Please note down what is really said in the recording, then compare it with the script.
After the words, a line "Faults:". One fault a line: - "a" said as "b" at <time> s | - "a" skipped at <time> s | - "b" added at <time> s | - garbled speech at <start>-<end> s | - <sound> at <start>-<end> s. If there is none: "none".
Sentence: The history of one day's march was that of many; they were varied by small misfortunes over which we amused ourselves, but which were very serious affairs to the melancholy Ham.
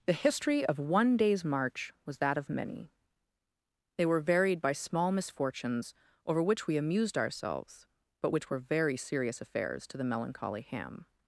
The history of one day's march was that of many; they were varied by small misfortunes over which we amused ourselves, but which were very serious affairs to the melancholy Ham.
Faults:
none